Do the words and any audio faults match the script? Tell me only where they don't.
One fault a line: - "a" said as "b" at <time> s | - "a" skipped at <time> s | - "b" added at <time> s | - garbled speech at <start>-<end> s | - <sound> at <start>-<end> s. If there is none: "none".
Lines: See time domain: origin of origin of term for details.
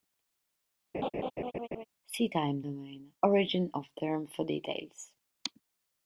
- laugh at 0.9-1.8 s
- "origin of" skipped at 3.9 s